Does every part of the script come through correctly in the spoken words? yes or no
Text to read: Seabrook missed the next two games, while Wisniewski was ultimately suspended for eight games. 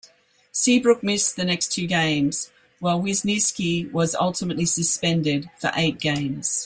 yes